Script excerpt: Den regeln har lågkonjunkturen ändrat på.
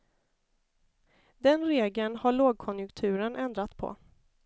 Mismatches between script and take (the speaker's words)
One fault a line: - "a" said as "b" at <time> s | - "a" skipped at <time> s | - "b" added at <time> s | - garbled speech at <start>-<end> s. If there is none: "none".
none